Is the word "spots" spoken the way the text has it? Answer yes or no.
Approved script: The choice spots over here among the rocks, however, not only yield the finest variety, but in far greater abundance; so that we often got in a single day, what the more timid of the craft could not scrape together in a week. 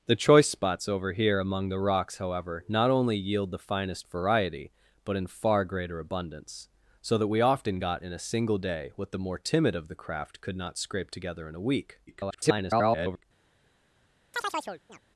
yes